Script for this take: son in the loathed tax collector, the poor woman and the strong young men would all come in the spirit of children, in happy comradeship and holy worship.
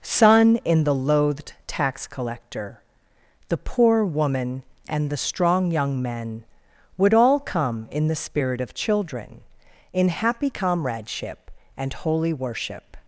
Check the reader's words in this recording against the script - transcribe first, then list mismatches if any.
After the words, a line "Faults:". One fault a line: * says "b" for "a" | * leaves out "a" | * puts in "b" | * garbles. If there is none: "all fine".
son in the loathed tax collector, the poor woman and the strong young men would all come in the spirit of children, in happy comradeship and holy worship.
Faults:
all fine